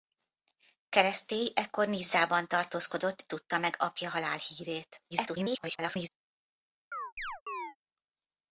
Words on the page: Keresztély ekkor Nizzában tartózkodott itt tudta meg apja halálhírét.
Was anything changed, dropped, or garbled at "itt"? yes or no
yes